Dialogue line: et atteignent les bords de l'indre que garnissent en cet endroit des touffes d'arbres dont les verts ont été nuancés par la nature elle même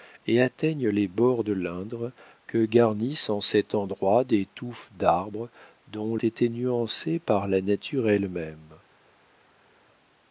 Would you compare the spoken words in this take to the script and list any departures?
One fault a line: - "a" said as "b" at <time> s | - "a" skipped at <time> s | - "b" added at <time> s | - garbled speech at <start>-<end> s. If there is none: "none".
- "les verts ont" skipped at 6.2 s